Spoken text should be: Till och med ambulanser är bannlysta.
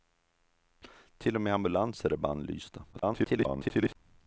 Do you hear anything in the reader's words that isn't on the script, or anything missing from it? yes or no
yes